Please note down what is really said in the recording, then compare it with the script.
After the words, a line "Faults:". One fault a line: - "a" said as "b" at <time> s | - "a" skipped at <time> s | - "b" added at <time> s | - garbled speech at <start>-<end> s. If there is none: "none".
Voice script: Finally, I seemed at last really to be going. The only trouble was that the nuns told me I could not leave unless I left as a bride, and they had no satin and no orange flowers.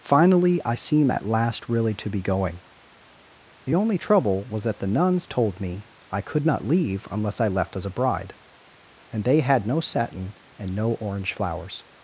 Finally, I seem at last really to be going. The only trouble was that the nuns told me I could not leave unless I left as a bride, and they had no satin and no orange flowers.
Faults:
- "seemed" said as "seem" at 0.8 s